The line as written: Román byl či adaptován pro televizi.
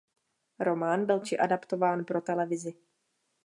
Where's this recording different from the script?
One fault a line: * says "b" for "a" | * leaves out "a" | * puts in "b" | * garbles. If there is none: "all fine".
all fine